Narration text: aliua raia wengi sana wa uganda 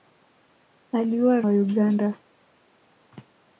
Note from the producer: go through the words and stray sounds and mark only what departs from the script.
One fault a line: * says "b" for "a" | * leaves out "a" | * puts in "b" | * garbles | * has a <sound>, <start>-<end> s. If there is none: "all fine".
* leaves out "raia wengi sana"